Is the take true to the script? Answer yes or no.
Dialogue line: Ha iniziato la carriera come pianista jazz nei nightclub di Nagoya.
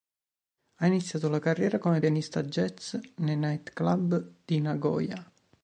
yes